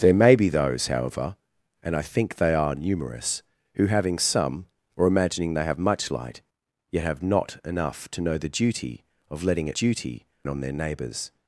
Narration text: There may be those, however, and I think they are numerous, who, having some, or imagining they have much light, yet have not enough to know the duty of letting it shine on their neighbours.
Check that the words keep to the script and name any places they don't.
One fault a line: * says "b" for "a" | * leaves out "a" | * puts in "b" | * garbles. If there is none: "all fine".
* says "duty" for "shine"